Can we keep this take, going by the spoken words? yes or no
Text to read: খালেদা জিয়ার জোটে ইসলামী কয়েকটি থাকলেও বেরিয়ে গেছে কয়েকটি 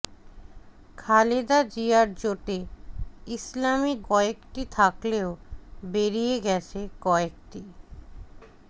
yes